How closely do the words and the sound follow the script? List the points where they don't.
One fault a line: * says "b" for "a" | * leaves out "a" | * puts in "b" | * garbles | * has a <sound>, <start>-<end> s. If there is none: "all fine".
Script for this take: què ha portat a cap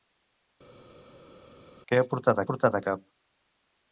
* puts in "portat"